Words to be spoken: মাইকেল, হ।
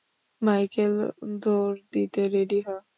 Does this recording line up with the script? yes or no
no